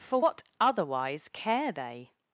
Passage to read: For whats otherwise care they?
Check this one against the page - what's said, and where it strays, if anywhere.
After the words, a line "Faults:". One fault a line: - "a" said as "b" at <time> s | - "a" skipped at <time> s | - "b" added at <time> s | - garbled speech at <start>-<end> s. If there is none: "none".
For what otherwise care they?
Faults:
- "whats" said as "what" at 0.2 s